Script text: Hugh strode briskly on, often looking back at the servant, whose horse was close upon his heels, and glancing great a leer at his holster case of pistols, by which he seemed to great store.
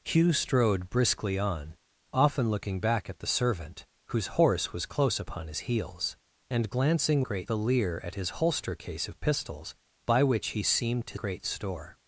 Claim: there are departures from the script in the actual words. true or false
false